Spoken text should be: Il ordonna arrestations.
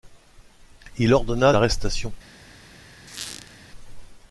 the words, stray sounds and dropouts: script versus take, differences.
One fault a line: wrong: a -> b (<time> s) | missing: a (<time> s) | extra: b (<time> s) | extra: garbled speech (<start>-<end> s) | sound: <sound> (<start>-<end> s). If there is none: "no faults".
sound: squeak (3.1-3.6 s)